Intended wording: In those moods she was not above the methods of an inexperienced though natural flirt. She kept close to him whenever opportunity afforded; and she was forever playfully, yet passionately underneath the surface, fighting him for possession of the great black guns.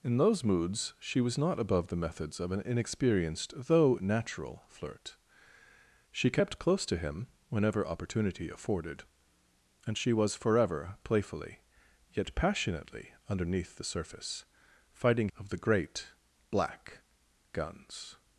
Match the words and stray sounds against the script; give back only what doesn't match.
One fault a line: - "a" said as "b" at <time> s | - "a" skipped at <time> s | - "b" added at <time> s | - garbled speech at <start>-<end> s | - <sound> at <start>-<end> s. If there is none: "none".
- "him for possession" skipped at 15.3 s